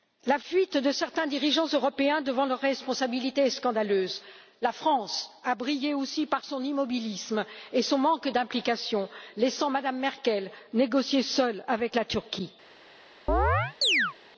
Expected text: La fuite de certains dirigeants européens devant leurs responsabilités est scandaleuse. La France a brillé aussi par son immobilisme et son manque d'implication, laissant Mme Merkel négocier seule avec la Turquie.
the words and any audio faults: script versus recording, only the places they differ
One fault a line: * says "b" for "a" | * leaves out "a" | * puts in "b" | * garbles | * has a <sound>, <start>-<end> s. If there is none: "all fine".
* has a chirp, 13.3-14.1 s